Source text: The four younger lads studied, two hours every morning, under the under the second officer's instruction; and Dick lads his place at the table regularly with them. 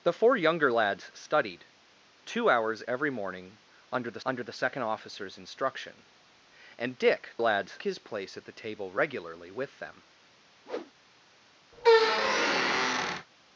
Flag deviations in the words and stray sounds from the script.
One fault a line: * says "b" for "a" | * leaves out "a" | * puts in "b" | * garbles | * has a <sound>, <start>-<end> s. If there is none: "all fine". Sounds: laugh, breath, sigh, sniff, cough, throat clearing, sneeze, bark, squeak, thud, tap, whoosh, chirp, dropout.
* has a whoosh, 10.6-10.9 s
* has a squeak, 11.7-13.3 s